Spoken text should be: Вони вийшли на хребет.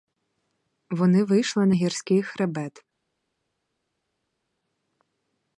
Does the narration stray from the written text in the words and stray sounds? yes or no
yes